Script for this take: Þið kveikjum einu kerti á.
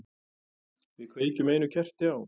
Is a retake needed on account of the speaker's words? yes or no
yes